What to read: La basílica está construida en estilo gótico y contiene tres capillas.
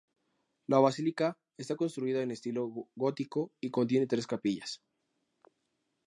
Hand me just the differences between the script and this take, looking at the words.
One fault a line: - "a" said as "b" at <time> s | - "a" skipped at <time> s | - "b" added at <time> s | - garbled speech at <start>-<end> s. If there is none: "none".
none